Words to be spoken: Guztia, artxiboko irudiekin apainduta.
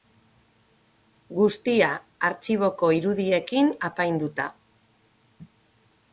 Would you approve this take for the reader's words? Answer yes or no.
yes